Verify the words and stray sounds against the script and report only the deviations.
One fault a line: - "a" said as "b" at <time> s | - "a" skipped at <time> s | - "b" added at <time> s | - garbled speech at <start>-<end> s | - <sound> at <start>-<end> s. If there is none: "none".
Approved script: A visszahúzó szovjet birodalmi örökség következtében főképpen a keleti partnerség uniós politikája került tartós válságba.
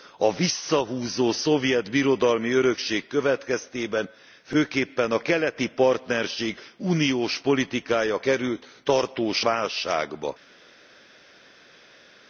none